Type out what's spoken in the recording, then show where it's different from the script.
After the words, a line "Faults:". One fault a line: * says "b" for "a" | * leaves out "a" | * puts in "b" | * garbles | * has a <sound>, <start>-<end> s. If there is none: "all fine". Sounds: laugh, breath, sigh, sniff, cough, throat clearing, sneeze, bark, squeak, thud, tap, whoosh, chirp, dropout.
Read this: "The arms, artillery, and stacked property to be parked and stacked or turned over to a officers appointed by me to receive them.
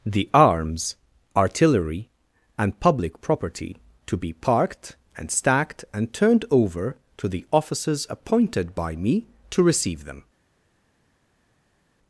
"The arms, artillery, and public property to be parked and stacked and turned over to the officers appointed by me to receive them.
Faults:
* says "public" for "stacked"
* says "and" for "or"
* says "the" for "a"